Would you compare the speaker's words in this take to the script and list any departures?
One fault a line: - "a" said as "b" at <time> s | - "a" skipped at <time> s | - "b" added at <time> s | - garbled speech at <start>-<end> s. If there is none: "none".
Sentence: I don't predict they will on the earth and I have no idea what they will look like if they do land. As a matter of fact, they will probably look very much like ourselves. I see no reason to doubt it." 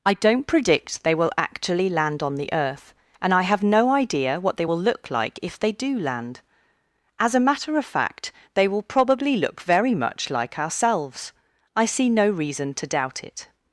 - "actually land" added at 1.4 s